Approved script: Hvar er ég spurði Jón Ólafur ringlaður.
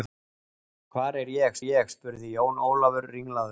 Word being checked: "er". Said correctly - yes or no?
yes